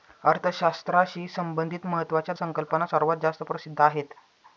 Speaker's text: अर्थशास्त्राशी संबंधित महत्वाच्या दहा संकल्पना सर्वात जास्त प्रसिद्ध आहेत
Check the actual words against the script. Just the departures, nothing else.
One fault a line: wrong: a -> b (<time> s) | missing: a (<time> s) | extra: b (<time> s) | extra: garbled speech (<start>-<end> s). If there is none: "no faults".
missing: दहा (2.4 s)